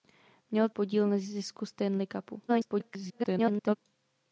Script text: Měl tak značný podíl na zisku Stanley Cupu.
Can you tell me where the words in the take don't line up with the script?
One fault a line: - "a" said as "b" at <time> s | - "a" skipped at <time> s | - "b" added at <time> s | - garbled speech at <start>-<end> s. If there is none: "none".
- "tak značný" skipped at 0.7 s
- garbled speech at 2.5-3.8 s